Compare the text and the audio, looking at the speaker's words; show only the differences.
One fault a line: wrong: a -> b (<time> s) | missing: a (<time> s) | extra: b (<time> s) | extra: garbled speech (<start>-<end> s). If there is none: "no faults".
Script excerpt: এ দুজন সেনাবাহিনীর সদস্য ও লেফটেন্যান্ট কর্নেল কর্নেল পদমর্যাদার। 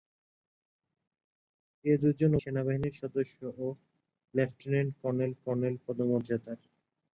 no faults